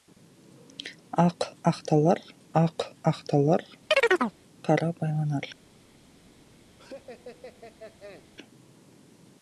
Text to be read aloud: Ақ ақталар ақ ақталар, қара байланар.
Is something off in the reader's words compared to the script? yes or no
no